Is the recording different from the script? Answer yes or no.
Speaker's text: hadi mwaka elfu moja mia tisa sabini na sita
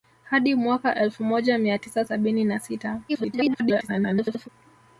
yes